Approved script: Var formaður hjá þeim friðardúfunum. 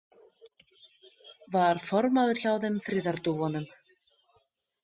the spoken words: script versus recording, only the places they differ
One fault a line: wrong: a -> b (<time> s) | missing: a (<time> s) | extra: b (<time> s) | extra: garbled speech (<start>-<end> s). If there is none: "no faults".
no faults